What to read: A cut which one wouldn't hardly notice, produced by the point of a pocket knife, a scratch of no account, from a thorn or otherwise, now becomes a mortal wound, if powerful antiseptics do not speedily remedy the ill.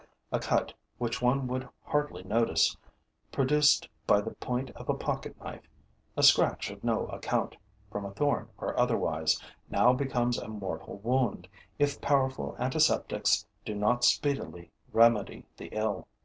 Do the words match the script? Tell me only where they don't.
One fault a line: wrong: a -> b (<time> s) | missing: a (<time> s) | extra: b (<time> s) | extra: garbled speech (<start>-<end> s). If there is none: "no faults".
wrong: wouldn't -> would (1.5 s)